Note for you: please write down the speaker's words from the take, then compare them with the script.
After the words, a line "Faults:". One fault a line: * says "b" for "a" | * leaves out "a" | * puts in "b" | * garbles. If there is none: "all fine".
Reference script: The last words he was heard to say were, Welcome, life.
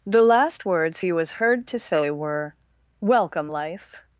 The last words he was heard to say were, Welcome, life.
Faults:
all fine